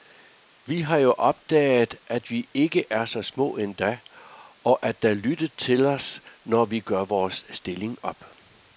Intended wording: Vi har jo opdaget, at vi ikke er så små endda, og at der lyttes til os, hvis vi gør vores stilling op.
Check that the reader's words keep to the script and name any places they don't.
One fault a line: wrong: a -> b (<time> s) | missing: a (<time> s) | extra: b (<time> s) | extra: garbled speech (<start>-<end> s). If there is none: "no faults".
wrong: hvis -> når (6.4 s)